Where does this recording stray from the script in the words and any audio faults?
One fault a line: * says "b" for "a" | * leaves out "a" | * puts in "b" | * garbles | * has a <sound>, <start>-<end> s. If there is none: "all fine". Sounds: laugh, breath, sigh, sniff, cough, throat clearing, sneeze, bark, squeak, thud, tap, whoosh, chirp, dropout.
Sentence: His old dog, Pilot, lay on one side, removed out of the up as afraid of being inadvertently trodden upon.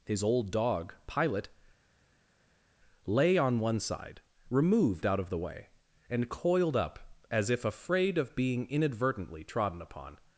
* puts in "way and coiled"
* puts in "if"